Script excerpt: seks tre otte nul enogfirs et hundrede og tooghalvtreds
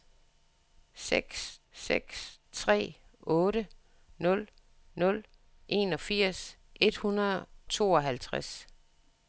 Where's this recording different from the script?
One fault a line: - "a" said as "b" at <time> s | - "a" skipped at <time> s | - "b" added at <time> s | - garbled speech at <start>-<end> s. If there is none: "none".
- "seks" added at 1.7 s
- "nul" added at 4.9 s
- "og" skipped at 7.4 s